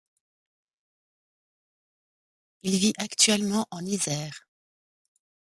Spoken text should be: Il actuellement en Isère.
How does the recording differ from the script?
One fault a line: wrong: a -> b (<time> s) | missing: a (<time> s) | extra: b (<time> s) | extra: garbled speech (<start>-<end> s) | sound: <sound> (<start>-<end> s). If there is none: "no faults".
extra: vit (2.8 s)